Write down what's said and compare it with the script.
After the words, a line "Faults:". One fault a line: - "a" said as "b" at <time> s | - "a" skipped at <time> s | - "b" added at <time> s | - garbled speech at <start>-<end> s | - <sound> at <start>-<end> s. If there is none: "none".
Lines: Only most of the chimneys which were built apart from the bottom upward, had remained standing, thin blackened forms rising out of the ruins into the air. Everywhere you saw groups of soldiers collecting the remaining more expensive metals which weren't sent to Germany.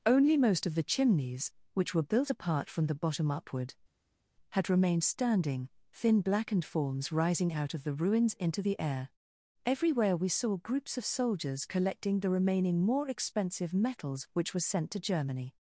Only most of the chimneys which were built apart from the bottom upward, had remained standing, thin blackened forms rising out of the ruins into the air. Everywhere we saw groups of soldiers collecting the remaining more expensive metals which were sent to Germany.
Faults:
- "you" said as "we" at 10.2 s
- "weren't" said as "were" at 14.5 s